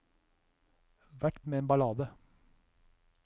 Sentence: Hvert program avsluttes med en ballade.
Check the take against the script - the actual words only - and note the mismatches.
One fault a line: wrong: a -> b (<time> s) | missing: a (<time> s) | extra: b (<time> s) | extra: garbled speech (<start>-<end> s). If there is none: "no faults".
missing: program avsluttes (1.4 s)